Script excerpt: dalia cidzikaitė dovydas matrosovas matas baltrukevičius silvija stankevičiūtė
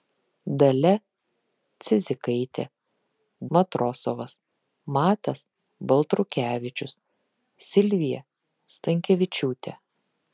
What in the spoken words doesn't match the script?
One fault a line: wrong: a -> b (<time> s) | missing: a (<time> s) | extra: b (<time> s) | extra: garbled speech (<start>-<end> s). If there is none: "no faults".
missing: dovydas (2.6 s)